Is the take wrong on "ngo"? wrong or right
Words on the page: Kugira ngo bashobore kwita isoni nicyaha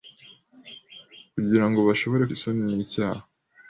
right